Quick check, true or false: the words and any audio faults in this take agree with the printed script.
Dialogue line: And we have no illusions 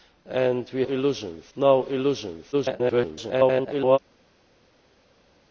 false